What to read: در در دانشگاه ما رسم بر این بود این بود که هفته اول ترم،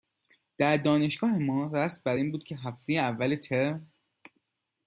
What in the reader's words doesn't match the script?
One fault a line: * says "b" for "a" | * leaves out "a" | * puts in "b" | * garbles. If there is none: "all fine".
* leaves out "در"
* leaves out "این بود"